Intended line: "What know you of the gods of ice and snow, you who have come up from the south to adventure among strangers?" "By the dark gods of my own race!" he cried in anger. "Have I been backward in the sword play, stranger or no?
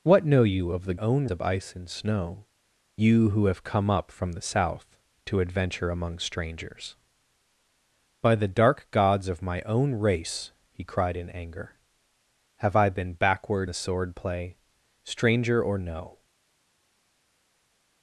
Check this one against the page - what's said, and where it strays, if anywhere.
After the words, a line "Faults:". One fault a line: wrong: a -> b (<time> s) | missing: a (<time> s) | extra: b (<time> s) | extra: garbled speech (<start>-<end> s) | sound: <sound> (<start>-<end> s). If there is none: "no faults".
"What know you of the own of ice and snow, you who have come up from the south to adventure among strangers?" "By the dark gods of my own race!" he cried in anger. "Have I been backward the sword play, stranger or no?
Faults:
wrong: gods -> own (1.0 s)
missing: in (13.7 s)